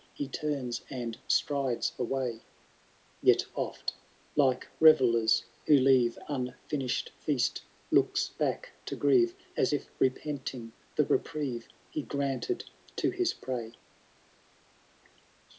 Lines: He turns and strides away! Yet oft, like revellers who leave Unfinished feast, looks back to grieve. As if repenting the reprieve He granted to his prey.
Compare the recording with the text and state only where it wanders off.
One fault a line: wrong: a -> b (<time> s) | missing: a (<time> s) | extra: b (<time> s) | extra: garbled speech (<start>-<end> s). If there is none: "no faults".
no faults